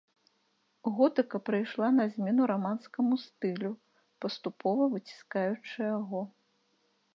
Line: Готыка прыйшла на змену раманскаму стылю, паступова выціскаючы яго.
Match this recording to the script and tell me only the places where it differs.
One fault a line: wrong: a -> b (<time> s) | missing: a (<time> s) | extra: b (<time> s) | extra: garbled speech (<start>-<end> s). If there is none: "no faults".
no faults